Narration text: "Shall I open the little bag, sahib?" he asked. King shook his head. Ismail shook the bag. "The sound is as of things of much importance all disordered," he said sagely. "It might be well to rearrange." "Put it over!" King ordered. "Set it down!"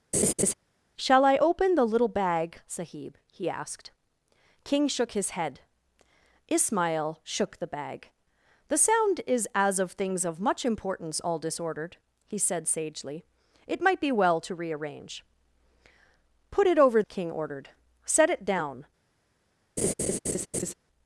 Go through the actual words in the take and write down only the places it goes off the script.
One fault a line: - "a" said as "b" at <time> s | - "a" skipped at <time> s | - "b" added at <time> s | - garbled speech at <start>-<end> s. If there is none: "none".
none